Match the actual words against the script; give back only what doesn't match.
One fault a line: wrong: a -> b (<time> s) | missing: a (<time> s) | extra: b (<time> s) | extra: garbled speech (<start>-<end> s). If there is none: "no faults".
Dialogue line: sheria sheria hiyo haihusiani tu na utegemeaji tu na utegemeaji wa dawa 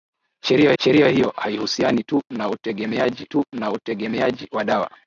no faults